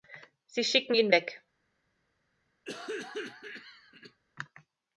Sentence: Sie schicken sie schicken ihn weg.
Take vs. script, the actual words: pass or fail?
fail